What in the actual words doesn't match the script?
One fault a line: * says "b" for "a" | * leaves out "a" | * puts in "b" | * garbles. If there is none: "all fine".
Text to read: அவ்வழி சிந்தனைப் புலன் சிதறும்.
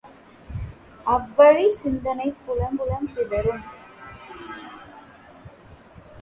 * puts in "புலன்"